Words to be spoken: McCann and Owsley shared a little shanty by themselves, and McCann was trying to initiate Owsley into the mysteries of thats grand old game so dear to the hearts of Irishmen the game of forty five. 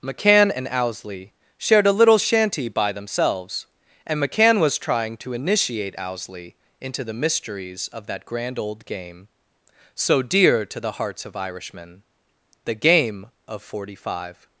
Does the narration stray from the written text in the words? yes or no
yes